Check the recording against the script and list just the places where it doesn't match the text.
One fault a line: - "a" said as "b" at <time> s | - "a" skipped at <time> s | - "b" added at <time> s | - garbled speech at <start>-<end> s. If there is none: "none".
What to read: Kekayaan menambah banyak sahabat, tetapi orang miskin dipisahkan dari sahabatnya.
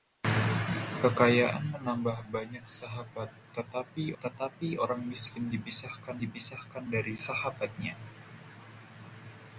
- "tetapi" added at 4.2 s
- "dipisahkan" added at 6.2 s